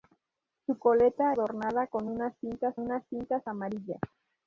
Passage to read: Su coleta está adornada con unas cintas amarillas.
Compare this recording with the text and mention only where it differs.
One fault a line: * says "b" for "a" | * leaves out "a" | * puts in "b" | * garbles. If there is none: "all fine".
* leaves out "está"
* puts in "unas cintas"